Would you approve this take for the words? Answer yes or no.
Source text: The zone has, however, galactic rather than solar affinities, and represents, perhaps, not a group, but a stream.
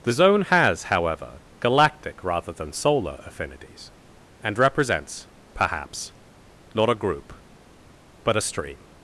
yes